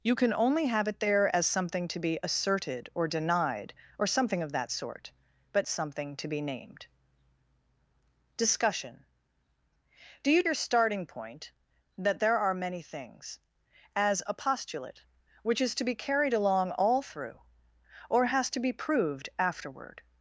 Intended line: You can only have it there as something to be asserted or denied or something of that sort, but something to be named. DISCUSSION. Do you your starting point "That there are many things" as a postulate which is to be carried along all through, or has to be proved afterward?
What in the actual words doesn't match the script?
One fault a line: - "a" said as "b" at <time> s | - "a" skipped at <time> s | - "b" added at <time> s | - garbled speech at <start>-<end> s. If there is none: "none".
none